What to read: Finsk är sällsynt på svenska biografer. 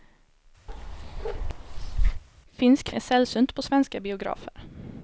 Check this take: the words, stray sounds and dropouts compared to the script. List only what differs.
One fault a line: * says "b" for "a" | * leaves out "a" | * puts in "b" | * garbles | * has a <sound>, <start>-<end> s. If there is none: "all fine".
* has a bark, 0.7-2.2 s